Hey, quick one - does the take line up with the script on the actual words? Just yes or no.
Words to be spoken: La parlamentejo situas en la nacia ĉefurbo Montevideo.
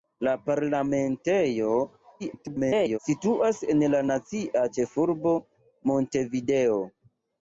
no